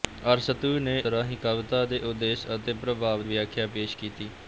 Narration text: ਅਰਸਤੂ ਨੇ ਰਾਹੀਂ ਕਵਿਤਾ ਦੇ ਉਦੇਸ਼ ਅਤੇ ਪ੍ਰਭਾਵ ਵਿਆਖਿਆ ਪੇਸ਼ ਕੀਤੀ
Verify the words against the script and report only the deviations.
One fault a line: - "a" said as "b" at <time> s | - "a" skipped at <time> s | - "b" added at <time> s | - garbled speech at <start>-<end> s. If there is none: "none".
none